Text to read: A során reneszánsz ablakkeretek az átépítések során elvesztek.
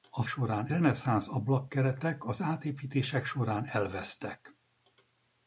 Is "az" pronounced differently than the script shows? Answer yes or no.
no